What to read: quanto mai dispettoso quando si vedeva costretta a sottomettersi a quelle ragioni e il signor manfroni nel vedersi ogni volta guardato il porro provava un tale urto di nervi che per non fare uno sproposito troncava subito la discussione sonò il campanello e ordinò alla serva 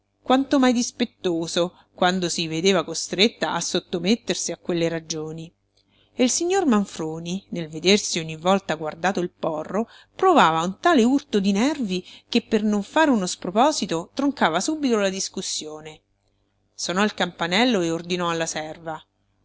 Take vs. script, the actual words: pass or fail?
pass